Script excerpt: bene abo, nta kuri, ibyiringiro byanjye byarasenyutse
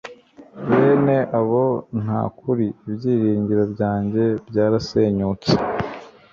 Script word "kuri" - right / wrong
right